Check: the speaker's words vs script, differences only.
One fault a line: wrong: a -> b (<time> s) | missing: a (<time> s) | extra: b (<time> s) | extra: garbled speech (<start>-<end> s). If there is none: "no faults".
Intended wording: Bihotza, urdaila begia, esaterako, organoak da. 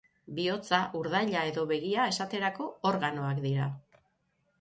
extra: edo (1.5 s)
wrong: da -> dira (3.5 s)